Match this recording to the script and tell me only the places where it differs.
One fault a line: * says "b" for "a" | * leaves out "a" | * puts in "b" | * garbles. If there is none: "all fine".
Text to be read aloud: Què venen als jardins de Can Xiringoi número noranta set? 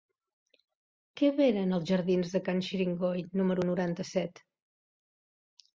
all fine